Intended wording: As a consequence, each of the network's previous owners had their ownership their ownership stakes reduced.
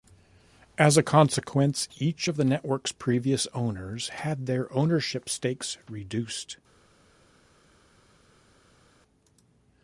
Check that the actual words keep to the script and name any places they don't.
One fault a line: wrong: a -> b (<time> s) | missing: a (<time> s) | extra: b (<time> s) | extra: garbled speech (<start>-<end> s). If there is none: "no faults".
missing: their ownership (5.3 s)